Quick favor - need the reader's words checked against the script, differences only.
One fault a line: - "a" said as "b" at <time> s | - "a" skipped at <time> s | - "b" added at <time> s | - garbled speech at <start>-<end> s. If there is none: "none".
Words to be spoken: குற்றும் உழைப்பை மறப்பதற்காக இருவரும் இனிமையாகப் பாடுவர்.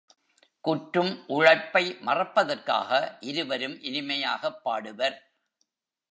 none